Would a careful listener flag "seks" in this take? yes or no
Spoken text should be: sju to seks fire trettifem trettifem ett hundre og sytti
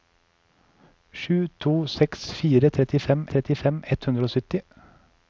no